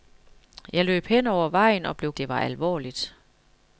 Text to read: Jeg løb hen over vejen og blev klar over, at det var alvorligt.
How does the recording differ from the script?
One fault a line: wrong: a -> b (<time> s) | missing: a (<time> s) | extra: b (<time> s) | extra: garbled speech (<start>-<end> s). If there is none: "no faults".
missing: klar over at (2.1 s)